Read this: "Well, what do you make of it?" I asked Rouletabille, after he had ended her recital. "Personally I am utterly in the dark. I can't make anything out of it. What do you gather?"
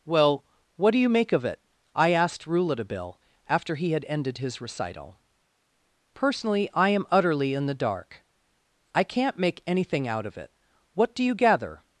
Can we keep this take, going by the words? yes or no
no